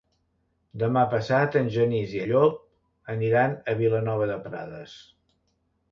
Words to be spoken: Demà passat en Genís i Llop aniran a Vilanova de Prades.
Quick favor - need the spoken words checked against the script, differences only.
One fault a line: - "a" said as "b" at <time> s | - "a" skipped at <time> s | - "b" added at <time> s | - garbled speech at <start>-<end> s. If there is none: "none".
none